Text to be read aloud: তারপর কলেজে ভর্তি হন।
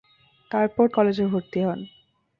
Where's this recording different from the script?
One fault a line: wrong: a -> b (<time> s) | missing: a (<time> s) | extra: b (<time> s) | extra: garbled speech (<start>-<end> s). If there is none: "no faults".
no faults